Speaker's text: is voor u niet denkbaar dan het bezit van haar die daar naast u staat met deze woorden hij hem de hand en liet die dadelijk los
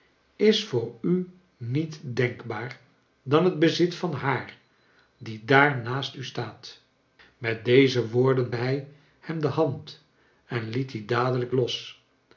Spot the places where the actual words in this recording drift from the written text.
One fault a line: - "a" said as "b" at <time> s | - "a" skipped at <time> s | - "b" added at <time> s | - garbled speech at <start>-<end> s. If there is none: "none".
none